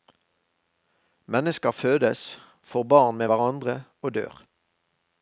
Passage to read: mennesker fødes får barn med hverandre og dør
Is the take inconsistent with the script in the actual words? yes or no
no